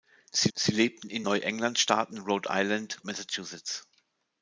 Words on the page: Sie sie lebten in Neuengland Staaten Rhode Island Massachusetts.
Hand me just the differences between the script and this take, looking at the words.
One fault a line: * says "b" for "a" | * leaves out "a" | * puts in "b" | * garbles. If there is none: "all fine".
all fine